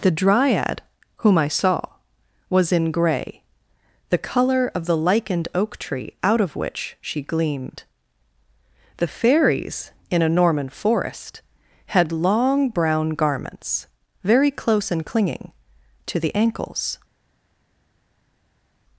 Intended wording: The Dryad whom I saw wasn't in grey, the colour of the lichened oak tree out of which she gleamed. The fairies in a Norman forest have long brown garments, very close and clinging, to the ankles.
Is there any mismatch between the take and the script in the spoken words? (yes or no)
yes